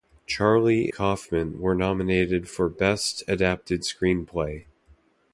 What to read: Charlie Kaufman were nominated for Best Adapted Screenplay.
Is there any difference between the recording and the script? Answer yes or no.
no